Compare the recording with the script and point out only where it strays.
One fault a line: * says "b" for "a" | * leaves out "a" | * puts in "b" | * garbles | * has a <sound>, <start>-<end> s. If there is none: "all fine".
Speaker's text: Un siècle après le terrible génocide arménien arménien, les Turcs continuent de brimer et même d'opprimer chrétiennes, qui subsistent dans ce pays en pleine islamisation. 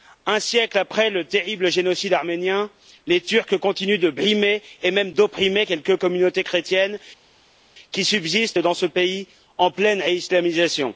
* leaves out "arménien"
* puts in "quelques communautés"